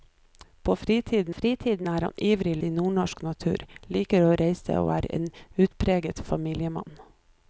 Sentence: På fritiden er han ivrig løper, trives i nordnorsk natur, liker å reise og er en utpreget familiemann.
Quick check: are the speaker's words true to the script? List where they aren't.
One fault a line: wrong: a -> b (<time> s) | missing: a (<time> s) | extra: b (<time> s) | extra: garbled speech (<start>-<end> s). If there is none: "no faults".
extra: fritiden (1.3 s)
missing: løper trives (2.5 s)